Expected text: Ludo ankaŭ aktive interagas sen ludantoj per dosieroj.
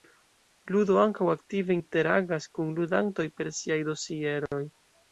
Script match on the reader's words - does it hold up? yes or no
no